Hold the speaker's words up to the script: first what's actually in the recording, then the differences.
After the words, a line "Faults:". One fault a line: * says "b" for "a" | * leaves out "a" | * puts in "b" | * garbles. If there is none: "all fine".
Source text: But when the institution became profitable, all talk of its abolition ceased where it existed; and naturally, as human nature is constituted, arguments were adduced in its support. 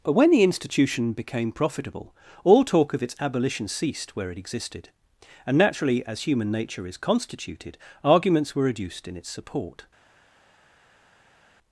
But when the institution became profitable, all talk of its abolition ceased where it existed; and naturally, as human nature is constituted, arguments were adduced in its support.
Faults:
all fine